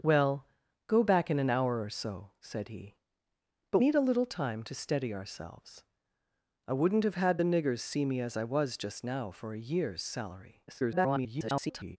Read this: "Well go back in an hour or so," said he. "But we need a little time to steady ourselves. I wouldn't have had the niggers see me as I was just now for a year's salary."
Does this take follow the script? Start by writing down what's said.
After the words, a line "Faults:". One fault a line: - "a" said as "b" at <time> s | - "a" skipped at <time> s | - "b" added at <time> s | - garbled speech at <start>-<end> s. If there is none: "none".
"Well go back in an hour or so," said he. "But need a little time to steady ourselves. I wouldn't have had the niggers see me as I was just now for a year's salary." [garbled]
Faults:
- "we" skipped at 3.8 s
- garbled speech at 10.7-12.0 s